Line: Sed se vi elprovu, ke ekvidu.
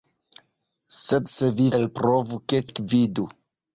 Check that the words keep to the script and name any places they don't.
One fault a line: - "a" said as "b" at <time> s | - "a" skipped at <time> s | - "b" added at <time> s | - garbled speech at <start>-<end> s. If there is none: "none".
none